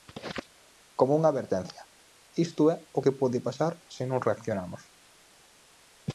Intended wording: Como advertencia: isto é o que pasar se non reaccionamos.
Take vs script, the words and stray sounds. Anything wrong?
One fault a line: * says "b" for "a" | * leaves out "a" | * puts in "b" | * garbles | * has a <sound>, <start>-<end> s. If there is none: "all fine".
* puts in "unha"
* puts in "pode"